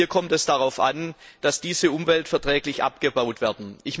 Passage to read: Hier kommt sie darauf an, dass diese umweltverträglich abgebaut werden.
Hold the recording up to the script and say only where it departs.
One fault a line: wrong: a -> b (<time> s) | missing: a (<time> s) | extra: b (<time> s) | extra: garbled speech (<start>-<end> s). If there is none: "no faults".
wrong: sie -> es (0.3 s)